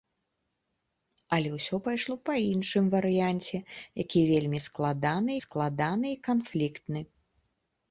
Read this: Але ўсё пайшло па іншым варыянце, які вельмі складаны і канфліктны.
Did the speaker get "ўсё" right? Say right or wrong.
right